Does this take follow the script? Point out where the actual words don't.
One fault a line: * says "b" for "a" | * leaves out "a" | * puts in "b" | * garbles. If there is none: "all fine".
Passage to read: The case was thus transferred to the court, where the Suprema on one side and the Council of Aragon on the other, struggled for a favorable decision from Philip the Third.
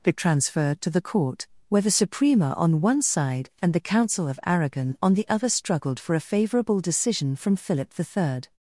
* leaves out "case was thus"